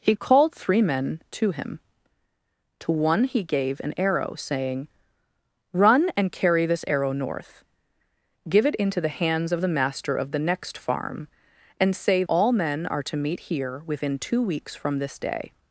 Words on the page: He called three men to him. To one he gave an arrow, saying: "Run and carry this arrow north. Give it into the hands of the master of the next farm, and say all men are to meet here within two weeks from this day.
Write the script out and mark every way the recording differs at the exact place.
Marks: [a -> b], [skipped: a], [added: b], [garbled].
He called three men to him. To one he gave an arrow, saying: "Run and carry this arrow north. Give it into the hands of the master of the next farm, and say all men are to meet here within two weeks from this day.